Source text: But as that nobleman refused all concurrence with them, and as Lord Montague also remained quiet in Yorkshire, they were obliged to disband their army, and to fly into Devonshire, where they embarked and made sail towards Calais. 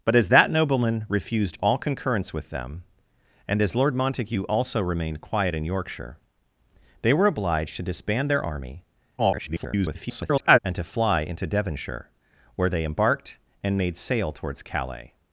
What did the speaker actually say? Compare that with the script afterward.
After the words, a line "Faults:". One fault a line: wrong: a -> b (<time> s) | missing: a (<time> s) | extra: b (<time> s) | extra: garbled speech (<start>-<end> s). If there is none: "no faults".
But as that nobleman refused all concurrence with them, and as Lord Montague also remained quiet in Yorkshire, they were obliged to disband their army, [garbled] and to fly into Devonshire, where they embarked and made sail towards Calais.
Faults:
extra: garbled speech (9.2-10.6 s)